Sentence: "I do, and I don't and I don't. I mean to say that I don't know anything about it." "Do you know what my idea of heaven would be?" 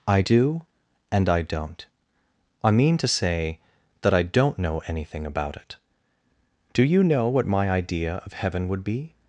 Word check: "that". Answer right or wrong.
right